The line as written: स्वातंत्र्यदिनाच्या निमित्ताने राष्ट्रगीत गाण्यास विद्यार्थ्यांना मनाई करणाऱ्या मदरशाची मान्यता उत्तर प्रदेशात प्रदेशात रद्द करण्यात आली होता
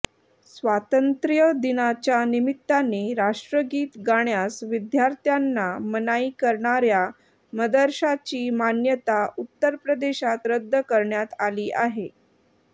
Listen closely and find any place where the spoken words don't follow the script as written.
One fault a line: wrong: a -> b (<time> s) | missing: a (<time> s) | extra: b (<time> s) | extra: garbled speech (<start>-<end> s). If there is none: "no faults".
missing: प्रदेशात (10.5 s)
wrong: होता -> आहे (11.8 s)